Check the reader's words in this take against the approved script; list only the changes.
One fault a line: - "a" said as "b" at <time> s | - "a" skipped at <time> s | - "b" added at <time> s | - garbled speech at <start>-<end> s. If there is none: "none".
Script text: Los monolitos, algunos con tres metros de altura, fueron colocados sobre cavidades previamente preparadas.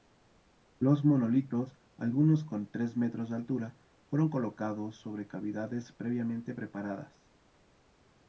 none